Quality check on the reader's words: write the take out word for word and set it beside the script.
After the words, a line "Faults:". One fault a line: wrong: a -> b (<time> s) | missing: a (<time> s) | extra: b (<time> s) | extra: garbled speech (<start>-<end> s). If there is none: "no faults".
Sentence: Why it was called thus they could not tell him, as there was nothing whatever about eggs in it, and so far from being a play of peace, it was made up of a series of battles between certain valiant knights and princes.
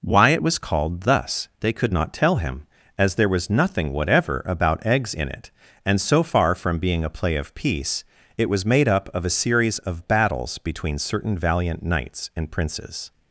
Why it was called thus they could not tell him, as there was nothing whatever about eggs in it, and so far from being a play of peace, it was made up of a series of battles between certain valiant knights and princes.
Faults:
no faults